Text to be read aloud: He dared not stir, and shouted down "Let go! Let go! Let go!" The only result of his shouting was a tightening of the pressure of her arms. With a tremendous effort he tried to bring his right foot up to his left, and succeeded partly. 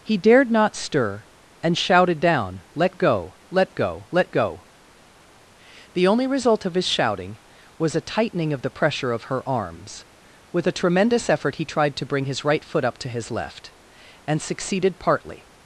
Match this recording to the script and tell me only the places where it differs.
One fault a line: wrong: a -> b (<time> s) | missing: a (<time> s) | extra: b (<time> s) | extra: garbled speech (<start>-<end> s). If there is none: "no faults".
no faults